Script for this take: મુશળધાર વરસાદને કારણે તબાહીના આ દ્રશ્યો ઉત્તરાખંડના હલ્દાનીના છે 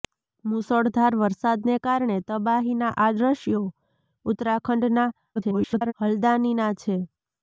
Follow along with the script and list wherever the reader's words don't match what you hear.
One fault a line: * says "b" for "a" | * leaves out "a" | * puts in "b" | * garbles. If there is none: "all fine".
* garbles